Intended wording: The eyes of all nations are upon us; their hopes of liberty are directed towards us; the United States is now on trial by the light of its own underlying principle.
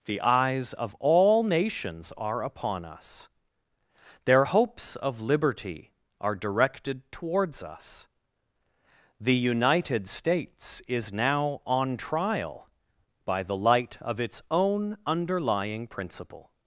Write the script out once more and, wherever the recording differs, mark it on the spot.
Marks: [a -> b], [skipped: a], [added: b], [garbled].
The eyes of all nations are upon us; their hopes of liberty are directed towards us; the United States is now on trial by the light of its own underlying principle.